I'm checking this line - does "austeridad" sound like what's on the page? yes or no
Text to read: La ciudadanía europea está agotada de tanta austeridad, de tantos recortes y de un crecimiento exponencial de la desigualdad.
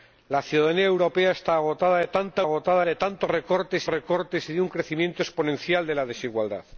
no